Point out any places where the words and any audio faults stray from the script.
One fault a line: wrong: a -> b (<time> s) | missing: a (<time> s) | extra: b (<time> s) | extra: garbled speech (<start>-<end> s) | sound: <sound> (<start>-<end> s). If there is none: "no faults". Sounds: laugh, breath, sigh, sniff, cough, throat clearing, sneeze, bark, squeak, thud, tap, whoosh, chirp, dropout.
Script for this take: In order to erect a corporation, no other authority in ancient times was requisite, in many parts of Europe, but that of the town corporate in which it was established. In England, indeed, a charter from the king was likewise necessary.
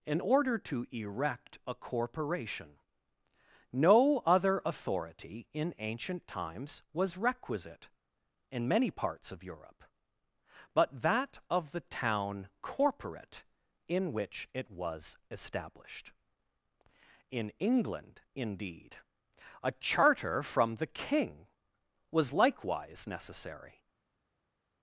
no faults